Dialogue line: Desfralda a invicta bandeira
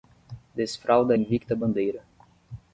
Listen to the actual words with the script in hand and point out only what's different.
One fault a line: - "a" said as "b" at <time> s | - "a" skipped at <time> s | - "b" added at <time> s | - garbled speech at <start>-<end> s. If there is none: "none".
none